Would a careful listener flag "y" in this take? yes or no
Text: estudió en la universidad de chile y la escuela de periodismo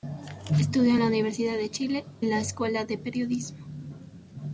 yes